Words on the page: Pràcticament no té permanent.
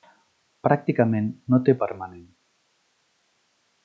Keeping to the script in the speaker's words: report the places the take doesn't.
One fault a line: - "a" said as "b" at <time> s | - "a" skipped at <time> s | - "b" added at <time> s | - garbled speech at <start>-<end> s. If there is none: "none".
none